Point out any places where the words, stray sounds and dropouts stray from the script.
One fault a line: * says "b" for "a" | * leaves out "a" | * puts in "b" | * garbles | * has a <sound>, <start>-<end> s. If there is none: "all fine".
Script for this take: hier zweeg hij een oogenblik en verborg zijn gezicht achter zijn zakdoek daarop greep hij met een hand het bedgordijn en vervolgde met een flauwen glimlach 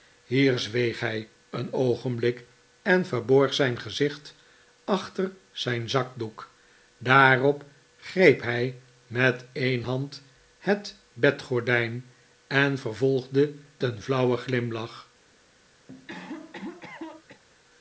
* leaves out "met"
* has a cough, 15.9-17.4 s